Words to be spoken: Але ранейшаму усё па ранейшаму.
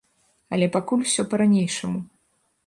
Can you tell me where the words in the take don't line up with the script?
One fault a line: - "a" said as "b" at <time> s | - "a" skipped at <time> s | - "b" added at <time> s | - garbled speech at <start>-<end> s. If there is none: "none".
- "ранейшаму" said as "пакуль" at 0.8 s